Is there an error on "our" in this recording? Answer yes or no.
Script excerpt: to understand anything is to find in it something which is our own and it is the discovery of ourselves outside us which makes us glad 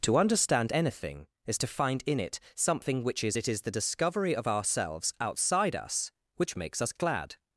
yes